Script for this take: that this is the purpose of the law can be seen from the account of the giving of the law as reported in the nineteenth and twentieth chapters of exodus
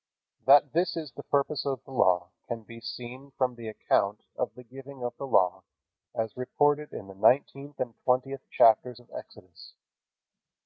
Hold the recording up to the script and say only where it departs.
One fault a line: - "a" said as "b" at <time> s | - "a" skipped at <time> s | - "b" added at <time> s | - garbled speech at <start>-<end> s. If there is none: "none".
none